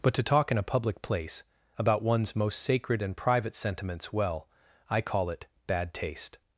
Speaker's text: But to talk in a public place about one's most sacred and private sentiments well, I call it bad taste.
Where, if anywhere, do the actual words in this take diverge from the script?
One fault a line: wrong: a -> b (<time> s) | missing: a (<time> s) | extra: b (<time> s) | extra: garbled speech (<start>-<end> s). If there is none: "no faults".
no faults